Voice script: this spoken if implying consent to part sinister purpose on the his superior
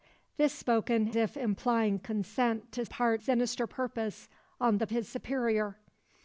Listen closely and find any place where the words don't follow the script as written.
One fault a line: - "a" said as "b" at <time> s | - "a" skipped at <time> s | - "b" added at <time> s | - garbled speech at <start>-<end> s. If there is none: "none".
none